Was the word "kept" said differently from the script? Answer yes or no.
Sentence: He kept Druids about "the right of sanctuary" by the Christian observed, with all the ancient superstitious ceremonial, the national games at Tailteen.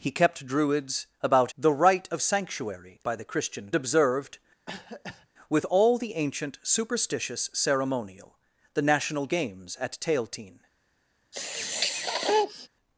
no